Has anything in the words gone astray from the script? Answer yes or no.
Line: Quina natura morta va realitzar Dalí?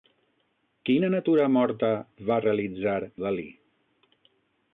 no